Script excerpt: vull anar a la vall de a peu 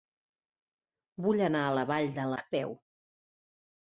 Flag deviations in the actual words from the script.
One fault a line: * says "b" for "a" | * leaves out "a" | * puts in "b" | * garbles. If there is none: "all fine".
all fine